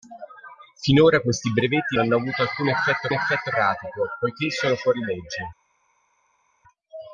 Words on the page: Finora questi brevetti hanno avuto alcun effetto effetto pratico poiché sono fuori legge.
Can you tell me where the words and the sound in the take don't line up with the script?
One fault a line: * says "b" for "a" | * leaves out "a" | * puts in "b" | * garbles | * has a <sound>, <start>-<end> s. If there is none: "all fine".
all fine